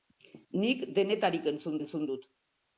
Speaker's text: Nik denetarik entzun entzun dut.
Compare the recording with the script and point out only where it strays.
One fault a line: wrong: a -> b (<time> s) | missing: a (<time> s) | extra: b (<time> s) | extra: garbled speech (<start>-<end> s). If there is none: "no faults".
no faults